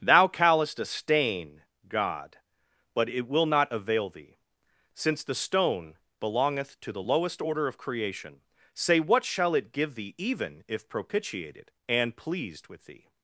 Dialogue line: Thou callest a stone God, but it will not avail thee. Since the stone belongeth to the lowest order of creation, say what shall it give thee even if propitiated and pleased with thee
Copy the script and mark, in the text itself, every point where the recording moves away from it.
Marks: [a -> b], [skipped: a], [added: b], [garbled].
Thou callest a [stone -> stain] God, but it will not avail thee. Since the stone belongeth to the lowest order of creation, say what shall it give thee even if propitiated and pleased with thee